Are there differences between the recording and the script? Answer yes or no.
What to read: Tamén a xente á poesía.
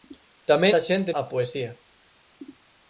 no